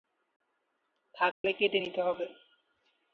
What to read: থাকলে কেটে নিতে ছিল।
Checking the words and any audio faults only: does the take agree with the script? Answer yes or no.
no